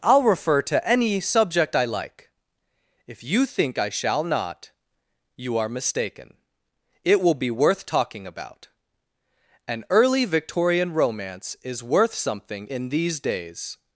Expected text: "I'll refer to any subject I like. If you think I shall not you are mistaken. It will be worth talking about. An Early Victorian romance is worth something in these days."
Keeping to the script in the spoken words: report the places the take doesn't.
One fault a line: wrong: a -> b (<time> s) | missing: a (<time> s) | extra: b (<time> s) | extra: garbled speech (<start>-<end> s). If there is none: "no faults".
no faults